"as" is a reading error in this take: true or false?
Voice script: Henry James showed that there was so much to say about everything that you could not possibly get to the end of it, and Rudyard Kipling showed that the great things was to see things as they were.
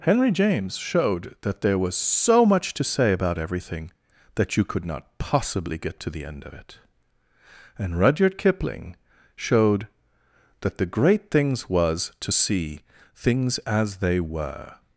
false